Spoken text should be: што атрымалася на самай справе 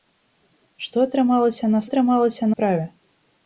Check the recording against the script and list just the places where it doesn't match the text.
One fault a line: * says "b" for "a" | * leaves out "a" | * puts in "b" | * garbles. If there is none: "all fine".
* says "атрымалася" for "самай"